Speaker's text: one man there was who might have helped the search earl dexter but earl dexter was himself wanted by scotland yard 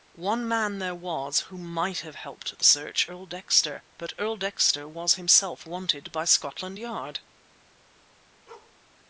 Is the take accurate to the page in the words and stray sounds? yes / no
no